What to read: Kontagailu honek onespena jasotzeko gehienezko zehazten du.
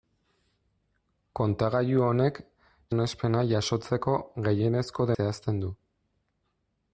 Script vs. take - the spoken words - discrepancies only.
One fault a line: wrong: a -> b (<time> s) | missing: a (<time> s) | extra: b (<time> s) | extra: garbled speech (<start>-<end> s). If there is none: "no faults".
no faults